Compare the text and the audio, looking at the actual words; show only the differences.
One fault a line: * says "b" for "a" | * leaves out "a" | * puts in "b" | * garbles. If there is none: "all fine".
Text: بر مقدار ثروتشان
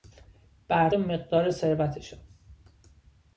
all fine